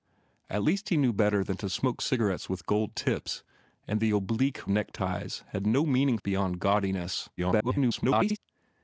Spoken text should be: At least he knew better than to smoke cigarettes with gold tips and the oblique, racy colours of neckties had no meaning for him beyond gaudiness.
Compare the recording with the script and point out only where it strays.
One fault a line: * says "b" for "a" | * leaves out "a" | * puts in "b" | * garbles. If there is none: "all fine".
* leaves out "racy colours of"
* leaves out "for him"
* garbles